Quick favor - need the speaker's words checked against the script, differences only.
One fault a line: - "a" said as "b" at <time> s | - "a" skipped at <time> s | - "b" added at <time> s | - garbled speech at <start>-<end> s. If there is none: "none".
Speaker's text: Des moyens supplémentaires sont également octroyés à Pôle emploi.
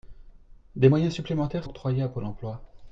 - "sont également" skipped at 1.6 s